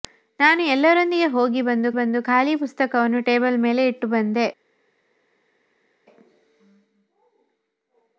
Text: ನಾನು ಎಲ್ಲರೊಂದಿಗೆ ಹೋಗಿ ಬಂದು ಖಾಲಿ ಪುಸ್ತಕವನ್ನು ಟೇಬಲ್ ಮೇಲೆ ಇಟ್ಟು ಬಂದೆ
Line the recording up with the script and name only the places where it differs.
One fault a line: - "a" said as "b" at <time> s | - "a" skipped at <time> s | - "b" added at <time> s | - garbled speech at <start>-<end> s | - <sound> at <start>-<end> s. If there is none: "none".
- "ಬಂದು" added at 1.9 s